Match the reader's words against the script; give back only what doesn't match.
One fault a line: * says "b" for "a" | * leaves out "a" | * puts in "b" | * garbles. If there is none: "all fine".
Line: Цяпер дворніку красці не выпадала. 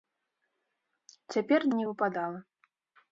* leaves out "дворніку красці"